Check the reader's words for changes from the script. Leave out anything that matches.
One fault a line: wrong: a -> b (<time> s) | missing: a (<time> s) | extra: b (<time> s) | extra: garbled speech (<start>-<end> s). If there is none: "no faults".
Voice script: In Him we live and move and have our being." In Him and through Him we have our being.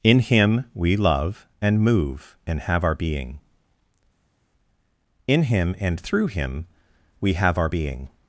wrong: live -> love (0.9 s)